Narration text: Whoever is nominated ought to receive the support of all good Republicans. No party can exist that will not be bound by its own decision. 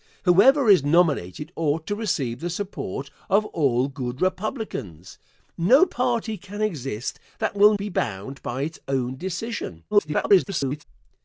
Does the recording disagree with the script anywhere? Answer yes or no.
yes